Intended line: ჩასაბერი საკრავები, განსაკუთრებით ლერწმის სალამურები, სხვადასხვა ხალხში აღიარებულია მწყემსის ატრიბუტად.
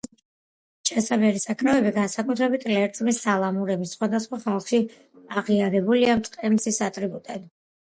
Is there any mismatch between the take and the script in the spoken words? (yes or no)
no